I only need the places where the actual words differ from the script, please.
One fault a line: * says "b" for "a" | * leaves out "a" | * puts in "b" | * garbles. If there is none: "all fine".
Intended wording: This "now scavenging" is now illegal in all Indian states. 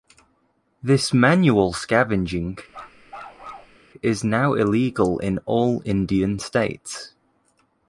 * says "manual" for "now"